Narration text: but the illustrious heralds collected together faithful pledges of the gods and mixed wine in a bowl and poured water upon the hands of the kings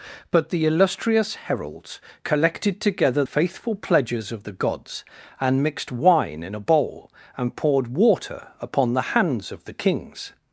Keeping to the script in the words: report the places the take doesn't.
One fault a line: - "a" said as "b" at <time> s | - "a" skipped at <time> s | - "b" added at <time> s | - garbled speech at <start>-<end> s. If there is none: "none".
none